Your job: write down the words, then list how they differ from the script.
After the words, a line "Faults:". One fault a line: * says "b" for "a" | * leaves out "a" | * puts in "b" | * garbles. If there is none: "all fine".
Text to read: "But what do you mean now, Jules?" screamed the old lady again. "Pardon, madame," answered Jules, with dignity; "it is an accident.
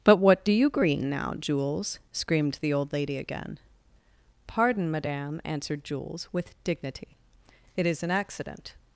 "But what do you green now, Jules?" screamed the old lady again. "Pardon, madame," answered Jules, with dignity; "it is an accident.
Faults:
* says "green" for "mean"